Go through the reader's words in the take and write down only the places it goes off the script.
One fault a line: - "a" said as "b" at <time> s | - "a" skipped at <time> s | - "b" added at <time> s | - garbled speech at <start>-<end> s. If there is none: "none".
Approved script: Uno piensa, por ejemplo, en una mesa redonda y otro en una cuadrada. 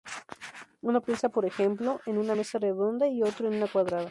none